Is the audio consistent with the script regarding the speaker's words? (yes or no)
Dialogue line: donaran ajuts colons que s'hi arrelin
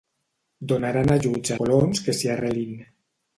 yes